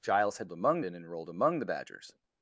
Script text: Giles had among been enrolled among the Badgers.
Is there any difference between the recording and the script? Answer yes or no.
no